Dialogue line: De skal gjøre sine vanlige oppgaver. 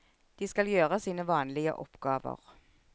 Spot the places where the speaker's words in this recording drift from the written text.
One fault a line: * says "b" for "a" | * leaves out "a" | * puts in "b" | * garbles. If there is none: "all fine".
all fine